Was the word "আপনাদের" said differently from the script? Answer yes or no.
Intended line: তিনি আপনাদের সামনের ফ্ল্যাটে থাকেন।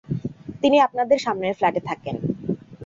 no